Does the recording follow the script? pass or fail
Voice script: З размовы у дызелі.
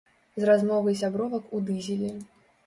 fail